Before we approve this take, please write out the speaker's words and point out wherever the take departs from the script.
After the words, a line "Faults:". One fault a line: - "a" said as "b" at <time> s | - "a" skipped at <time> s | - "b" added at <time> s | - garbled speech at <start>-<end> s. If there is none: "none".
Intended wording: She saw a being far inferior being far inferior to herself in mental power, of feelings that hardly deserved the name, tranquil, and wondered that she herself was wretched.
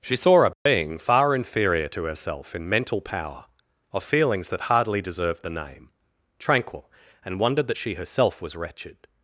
She saw a being far inferior to herself in mental power, of feelings that hardly deserved the name, tranquil, and wondered that she herself was wretched.
Faults:
- "being far inferior" skipped at 1.9 s